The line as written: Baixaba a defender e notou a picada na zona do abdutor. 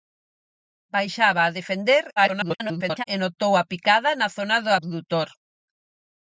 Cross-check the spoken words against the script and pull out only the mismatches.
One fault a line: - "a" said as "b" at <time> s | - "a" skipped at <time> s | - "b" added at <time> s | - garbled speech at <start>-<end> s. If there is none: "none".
- garbled speech at 2.2-3.0 s